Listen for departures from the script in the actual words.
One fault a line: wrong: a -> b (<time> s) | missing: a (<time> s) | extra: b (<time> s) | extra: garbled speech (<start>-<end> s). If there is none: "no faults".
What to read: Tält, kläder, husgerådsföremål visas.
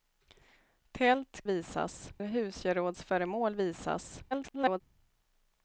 wrong: kläder -> visas (1.4 s)
extra: garbled speech (4.3-4.8 s)